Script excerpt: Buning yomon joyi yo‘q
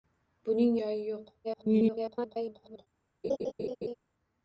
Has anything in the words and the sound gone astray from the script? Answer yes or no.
yes